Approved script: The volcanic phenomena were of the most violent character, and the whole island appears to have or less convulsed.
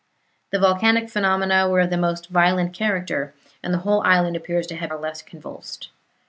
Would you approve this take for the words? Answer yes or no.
yes